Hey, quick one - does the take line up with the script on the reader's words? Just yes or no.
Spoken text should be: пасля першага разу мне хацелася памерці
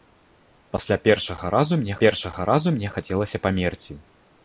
no